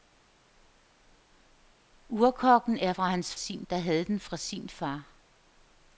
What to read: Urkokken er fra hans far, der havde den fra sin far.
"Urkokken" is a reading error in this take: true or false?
false